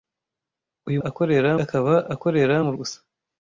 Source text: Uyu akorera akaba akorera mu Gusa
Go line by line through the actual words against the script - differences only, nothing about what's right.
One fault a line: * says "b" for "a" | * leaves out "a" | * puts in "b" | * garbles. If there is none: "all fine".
all fine